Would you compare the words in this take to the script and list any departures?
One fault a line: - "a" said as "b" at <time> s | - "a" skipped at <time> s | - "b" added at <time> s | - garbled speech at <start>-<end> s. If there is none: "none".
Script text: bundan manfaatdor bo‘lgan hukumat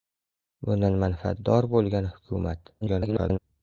- garbled speech at 2.8-3.4 s